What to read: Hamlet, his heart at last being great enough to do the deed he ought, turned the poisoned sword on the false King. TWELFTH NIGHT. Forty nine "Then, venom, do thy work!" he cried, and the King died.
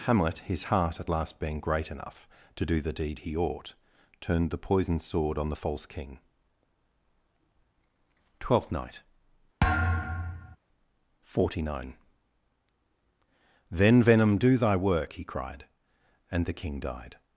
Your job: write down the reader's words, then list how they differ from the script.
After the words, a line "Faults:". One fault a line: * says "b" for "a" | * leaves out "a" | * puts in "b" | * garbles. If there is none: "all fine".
Hamlet, his heart at last being great enough to do the deed he ought, turned the poisoned sword on the false King. TWELFTH NIGHT. Forty nine "Then, venom, do thy work!" he cried, and the King died.
Faults:
all fine